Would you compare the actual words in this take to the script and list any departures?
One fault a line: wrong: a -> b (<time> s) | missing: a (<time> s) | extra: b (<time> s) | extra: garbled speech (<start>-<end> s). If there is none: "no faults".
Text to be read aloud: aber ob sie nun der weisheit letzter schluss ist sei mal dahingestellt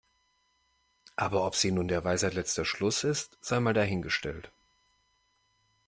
no faults